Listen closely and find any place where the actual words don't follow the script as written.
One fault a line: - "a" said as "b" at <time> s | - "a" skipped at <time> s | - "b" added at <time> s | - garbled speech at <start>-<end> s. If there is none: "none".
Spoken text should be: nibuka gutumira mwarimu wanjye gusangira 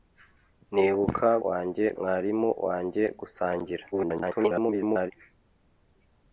- "gutumira" said as "wanjye" at 1.5 s
- garbled speech at 3.9-5.1 s